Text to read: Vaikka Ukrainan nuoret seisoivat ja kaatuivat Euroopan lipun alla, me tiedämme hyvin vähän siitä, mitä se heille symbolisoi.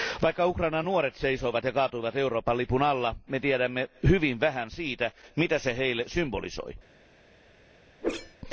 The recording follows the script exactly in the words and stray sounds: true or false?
false